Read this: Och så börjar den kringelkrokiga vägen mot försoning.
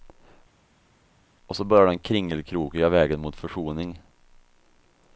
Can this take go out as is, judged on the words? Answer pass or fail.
pass